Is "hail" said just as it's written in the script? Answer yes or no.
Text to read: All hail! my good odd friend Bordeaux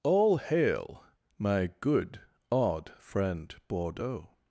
yes